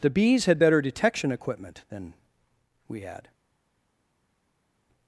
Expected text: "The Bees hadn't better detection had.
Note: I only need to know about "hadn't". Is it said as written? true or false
false